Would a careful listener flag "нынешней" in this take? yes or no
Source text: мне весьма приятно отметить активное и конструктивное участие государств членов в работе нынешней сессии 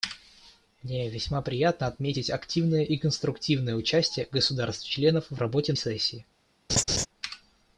yes